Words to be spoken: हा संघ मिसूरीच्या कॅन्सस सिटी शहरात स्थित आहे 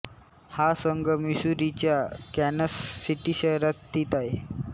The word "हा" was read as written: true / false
true